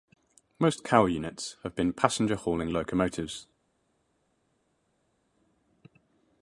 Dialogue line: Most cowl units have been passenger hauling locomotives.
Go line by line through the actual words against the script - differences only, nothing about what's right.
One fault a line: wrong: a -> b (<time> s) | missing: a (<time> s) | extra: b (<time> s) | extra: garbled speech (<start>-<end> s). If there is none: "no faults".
no faults